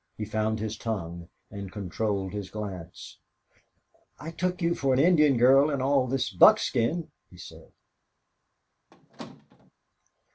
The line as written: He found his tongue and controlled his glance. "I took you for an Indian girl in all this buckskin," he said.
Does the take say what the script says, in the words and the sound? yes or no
no